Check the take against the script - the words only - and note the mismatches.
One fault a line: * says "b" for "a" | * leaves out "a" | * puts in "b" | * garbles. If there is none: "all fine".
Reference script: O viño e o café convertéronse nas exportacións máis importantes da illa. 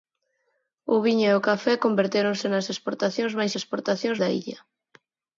* says "exportacións" for "importantes"